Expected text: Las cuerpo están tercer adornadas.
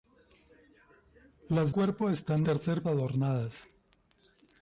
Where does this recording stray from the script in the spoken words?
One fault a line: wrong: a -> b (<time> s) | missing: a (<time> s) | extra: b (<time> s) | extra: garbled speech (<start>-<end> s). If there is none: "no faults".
no faults